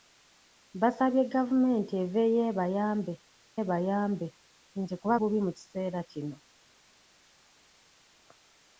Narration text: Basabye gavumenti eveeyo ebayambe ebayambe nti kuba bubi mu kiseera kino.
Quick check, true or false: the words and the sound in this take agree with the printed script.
true